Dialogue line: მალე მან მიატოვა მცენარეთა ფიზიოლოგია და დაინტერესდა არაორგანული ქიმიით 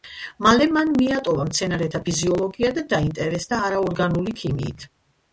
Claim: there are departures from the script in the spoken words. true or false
false